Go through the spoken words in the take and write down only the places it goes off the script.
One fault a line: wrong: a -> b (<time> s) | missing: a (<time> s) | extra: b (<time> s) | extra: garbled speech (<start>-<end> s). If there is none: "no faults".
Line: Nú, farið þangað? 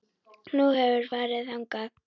extra: hefurðu (0.8 s)